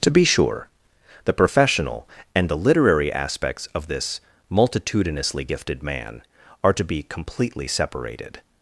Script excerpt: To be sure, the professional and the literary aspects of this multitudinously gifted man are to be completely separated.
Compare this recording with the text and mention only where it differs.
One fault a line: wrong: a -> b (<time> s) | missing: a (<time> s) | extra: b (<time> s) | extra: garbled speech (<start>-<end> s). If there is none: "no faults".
no faults